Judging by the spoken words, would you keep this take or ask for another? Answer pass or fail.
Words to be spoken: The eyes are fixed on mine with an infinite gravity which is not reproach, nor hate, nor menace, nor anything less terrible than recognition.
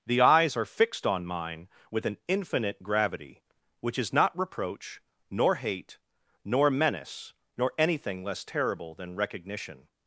pass